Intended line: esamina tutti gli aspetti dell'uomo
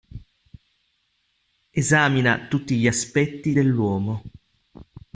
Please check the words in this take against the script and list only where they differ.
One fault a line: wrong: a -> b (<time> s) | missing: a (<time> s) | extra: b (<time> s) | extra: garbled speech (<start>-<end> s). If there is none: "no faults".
no faults